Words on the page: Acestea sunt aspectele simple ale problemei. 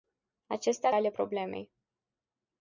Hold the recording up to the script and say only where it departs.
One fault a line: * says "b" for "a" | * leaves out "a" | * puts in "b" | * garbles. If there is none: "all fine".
* leaves out "sunt aspectele simple"